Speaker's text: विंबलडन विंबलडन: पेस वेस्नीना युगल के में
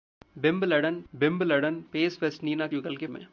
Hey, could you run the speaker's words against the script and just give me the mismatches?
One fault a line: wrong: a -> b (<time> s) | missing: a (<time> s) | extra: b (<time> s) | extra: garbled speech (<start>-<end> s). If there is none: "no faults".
no faults